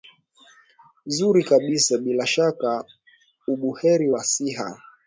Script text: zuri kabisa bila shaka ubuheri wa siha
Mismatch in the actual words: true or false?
false